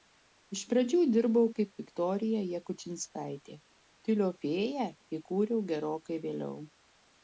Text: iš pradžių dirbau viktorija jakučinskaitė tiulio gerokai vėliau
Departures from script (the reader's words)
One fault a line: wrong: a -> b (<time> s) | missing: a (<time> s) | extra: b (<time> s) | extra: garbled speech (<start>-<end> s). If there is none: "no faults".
extra: kaip (1.6 s)
extra: fėją įkūriau (4.5 s)